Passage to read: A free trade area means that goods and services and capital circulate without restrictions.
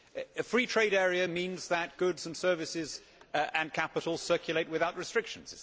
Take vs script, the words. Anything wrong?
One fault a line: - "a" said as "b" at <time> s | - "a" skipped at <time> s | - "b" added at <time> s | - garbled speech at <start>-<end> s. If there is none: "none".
none